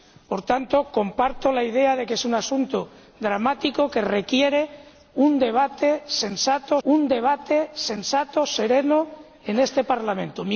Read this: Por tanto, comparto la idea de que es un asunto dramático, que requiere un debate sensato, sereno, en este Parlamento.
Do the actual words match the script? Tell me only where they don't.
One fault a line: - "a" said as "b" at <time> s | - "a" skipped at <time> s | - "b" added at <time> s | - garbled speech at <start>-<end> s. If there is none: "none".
- "un debate sensato" added at 6.8 s